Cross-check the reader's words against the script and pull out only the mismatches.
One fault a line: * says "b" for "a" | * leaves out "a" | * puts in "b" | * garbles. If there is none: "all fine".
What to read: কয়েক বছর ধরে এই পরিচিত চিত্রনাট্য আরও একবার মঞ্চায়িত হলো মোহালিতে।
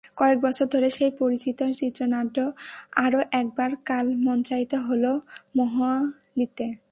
* says "সেই" for "এই"
* puts in "কাল"